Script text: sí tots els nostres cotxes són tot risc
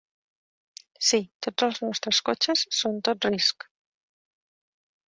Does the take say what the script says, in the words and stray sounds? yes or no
yes